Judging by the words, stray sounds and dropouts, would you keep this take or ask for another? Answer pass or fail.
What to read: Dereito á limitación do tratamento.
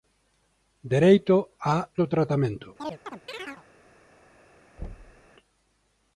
fail